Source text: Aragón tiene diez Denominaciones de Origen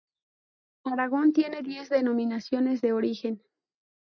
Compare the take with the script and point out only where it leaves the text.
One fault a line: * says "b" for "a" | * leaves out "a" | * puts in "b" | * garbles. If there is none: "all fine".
all fine